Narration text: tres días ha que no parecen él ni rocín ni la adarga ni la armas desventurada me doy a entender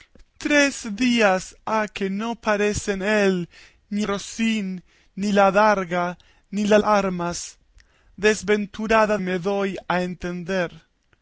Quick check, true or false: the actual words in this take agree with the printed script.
true